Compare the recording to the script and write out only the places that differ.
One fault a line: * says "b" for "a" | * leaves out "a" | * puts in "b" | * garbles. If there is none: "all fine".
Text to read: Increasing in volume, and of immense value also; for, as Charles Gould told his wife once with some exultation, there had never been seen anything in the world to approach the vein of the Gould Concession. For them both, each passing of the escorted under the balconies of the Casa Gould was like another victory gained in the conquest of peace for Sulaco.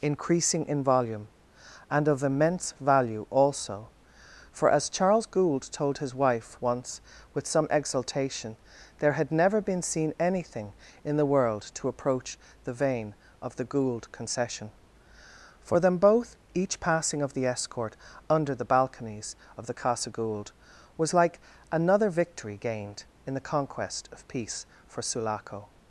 * says "escort" for "escorted"